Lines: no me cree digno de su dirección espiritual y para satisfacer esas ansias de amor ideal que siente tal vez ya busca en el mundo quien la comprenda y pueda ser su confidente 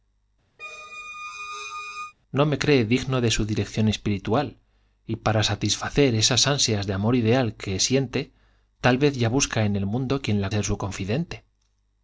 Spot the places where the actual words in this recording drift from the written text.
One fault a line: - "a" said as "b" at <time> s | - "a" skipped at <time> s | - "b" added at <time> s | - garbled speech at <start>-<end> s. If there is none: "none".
- "comprenda y pueda" skipped at 10.5 s